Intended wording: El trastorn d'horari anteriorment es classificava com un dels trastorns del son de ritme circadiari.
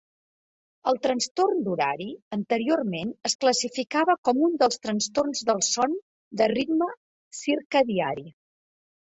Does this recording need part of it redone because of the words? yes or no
no